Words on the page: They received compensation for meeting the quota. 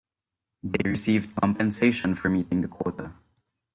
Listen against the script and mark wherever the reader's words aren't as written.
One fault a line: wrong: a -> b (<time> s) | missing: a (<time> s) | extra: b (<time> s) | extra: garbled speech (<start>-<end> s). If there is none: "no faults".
no faults